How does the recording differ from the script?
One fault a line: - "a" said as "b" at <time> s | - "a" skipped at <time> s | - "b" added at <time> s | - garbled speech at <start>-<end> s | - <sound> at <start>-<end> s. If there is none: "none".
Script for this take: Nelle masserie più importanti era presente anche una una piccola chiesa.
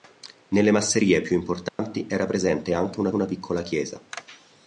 - dropout at 1.7-1.8 s